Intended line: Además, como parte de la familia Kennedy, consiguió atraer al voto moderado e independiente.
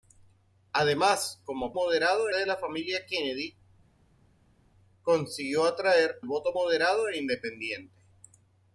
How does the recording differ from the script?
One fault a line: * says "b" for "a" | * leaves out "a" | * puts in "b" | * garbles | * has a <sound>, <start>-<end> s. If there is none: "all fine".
* says "moderado" for "parte"
* leaves out "al"